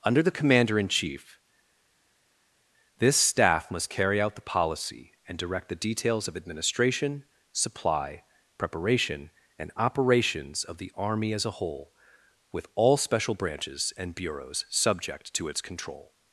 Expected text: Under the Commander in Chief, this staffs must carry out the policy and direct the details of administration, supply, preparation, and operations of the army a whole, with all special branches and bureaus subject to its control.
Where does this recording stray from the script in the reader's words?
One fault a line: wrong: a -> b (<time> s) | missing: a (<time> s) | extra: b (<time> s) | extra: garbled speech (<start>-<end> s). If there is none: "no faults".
wrong: staffs -> staff (3.2 s)
extra: as (11.3 s)